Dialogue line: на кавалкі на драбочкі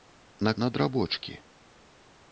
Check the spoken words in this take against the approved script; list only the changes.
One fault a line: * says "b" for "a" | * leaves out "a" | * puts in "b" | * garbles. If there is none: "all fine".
* leaves out "кавалкі"